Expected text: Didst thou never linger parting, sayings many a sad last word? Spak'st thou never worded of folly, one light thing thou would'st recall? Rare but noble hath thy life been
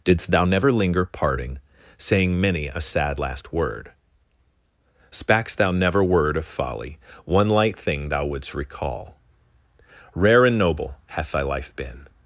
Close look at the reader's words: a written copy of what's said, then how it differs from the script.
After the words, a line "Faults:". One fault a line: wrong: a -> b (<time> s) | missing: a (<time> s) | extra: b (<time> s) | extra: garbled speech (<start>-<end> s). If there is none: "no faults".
Didst thou never linger parting, saying many a sad last word? Spak'st thou never word of folly, one light thing thou would'st recall? Rare and noble hath thy life been
Faults:
wrong: sayings -> saying (2.0 s)
wrong: worded -> word (6.0 s)
wrong: but -> and (10.4 s)